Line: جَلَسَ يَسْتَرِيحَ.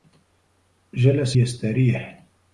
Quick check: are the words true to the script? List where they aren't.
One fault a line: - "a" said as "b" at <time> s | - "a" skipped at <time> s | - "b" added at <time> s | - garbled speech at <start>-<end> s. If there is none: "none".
none